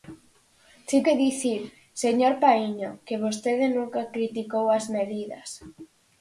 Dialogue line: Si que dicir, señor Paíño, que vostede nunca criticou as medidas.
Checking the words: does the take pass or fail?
pass